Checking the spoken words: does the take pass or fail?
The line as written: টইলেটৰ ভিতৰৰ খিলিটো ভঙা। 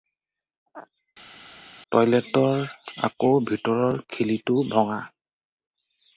fail